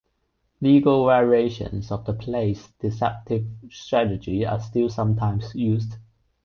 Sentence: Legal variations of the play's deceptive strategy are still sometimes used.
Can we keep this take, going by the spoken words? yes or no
yes